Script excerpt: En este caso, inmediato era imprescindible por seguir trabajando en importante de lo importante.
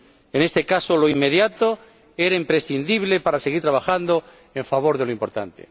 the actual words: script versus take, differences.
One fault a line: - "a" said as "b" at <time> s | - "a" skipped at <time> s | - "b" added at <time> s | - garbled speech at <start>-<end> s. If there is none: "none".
- "lo" added at 1.0 s
- "por" said as "para" at 3.2 s
- "importante" said as "favor" at 4.6 s